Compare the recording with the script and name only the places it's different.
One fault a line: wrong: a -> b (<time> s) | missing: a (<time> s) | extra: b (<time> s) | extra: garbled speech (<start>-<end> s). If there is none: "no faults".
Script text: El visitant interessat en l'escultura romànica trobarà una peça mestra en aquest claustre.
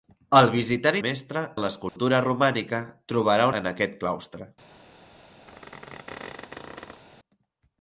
wrong: interessat -> mestra (1.0 s)
missing: una peça mestra (3.5 s)